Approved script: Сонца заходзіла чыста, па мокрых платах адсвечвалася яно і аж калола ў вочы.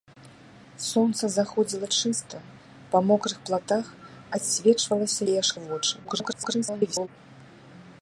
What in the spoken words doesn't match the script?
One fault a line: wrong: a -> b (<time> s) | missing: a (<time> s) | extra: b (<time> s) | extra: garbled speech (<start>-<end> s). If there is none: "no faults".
missing: яно (5.2 s)
missing: калола (5.5 s)
extra: garbled speech (6.0-7.1 s)